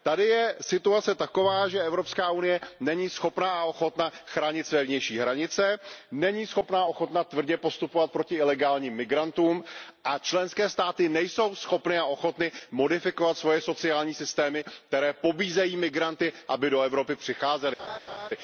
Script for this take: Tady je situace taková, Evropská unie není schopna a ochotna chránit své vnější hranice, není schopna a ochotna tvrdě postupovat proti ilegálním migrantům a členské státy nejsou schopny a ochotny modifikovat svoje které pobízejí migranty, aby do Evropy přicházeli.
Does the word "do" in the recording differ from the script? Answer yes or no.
no